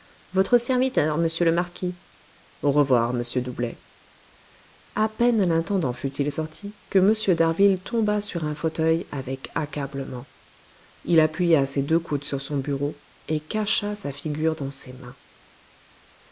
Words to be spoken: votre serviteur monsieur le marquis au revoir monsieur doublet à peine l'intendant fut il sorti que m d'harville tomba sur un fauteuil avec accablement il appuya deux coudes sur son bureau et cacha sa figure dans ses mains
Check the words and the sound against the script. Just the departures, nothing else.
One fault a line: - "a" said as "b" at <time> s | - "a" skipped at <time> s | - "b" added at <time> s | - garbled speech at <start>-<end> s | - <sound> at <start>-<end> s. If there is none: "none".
- "ses" added at 11.6 s